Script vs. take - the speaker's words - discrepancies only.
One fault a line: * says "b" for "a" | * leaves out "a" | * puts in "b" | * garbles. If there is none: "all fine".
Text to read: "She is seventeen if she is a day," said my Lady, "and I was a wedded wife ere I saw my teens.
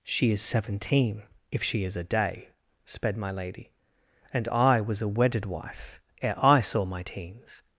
* says "sped" for "said"